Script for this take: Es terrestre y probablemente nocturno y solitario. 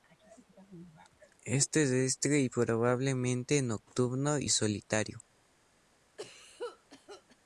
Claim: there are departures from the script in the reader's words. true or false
false